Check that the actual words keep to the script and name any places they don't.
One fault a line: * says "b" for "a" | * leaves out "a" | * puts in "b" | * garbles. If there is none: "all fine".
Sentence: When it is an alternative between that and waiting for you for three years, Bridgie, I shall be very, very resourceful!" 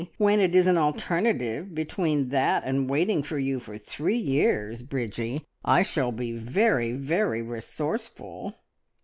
all fine